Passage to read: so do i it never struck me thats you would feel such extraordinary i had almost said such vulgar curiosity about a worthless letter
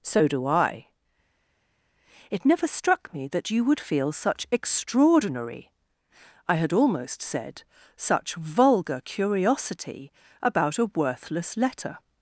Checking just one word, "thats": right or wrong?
wrong